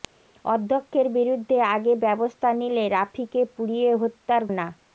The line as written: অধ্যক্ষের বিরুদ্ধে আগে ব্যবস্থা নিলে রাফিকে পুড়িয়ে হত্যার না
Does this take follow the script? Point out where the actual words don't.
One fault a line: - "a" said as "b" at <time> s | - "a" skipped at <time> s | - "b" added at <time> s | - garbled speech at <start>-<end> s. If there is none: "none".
none